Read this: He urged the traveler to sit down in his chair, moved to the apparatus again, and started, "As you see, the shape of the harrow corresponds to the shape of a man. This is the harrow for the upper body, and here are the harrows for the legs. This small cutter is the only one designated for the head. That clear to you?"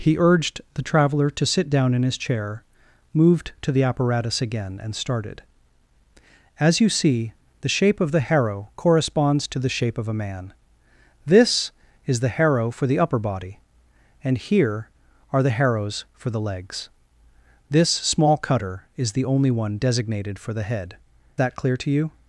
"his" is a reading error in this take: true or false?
false